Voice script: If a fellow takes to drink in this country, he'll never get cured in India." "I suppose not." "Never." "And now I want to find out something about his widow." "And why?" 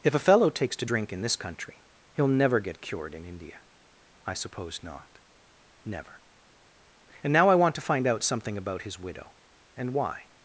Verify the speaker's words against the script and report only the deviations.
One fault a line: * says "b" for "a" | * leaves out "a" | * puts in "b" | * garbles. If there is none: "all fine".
all fine